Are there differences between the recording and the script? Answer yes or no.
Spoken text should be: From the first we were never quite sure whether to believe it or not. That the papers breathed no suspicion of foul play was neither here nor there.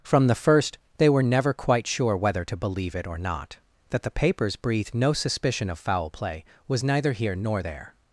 yes